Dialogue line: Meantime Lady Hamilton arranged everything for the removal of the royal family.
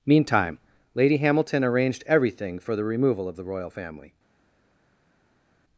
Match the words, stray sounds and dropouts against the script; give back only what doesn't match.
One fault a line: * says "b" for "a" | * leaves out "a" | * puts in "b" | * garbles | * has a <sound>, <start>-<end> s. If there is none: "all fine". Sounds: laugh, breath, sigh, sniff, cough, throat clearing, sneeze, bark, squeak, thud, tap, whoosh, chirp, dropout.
all fine